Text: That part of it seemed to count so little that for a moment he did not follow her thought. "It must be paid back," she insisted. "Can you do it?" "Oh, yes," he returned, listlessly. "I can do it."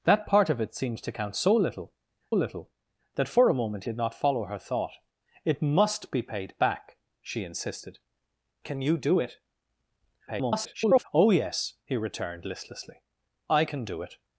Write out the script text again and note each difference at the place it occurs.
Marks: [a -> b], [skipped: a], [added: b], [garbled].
That part of it seemed to count so little [added: little] that for a moment [skipped: he] did not follow her thought. "It must be paid back," she insisted. "Can you do it?" [garbled] "Oh, yes," he returned, listlessly. "I can do it."